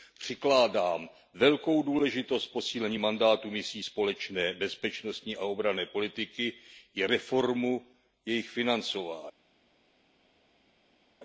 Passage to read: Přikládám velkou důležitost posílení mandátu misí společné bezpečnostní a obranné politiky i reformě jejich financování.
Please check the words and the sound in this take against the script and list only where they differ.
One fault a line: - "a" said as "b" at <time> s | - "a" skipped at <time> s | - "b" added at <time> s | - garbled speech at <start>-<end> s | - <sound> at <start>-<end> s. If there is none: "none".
none